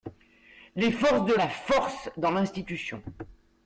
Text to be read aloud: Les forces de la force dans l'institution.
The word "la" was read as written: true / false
true